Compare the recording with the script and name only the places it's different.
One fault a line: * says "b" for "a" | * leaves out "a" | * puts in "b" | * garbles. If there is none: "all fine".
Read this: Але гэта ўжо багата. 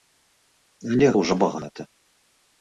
* leaves out "гэта"